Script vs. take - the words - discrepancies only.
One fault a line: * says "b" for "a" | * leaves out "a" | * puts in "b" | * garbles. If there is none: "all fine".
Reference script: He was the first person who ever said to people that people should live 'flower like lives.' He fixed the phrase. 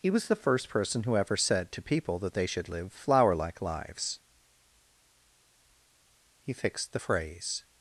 * says "they" for "people"